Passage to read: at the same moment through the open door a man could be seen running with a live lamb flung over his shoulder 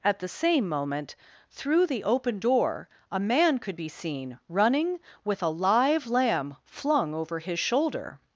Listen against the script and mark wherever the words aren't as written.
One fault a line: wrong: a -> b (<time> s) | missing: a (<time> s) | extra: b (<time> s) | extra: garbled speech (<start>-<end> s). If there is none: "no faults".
no faults